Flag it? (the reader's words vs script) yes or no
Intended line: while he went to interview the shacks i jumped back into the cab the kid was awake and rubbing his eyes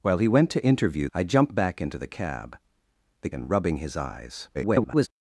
yes